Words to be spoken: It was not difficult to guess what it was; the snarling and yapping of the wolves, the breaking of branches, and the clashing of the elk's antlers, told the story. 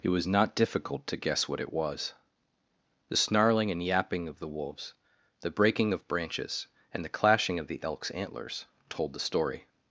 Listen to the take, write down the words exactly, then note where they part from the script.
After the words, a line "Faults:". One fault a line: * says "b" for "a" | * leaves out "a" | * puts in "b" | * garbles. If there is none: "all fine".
It was not difficult to guess what it was; the snarling and yapping of the wolves, the breaking of branches, and the clashing of the elk's antlers, told the story.
Faults:
all fine